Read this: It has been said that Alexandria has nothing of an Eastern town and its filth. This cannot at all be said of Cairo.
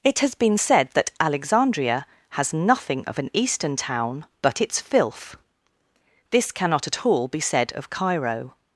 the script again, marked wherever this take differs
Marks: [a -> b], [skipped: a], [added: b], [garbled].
It has been said that Alexandria has nothing of an Eastern town [and -> but] its filth. This cannot at all be said of Cairo.